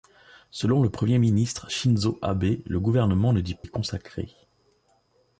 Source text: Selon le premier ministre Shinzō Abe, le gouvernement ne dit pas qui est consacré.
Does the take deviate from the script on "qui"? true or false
true